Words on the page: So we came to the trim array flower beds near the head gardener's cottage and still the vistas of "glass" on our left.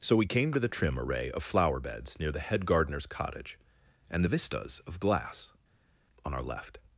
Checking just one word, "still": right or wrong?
wrong